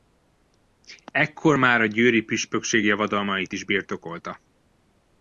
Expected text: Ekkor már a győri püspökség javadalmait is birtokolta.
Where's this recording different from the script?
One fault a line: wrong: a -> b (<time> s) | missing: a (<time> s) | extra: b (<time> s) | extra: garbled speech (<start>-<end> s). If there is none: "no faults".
no faults